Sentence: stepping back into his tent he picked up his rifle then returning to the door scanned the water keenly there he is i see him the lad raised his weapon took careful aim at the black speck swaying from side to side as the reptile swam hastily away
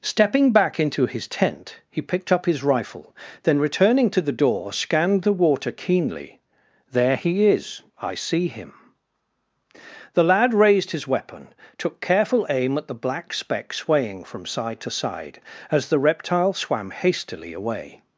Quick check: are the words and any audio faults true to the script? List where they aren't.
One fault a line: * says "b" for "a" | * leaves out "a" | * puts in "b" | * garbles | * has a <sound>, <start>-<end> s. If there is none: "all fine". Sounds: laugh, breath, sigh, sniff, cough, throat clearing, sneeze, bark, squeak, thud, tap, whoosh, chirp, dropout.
all fine